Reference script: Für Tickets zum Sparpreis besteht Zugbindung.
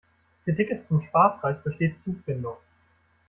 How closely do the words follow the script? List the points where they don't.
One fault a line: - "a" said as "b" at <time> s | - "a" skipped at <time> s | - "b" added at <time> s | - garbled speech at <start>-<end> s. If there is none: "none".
none